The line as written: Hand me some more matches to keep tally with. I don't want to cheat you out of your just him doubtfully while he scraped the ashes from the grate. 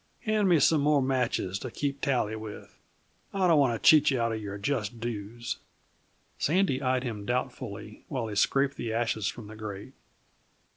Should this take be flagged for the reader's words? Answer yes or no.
yes